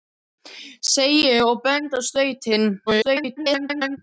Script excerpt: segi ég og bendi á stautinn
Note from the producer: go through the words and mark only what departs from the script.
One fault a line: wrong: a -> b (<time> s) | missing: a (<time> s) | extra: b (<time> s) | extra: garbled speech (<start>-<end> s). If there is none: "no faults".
extra: garbled speech (2.9-4.0 s)